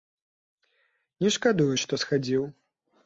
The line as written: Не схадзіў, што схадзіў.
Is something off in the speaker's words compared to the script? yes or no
yes